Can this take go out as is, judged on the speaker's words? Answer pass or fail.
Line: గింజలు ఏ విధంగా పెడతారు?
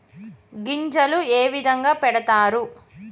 pass